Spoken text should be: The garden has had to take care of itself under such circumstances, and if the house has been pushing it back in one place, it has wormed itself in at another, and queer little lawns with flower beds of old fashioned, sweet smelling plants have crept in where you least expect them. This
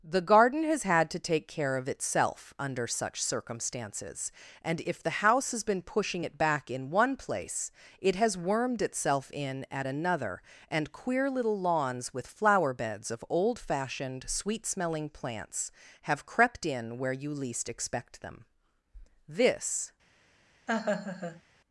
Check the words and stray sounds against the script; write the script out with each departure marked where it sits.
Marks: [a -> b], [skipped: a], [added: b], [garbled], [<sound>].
The garden has had to take care of itself under such circumstances, and if the house has been pushing it back in one place, it has wormed itself in at another, and queer little lawns with flower beds of old fashioned, sweet smelling plants have crept in where you least expect them. This [laugh]